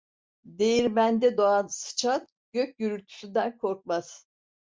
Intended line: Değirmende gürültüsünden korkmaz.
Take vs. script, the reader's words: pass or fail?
fail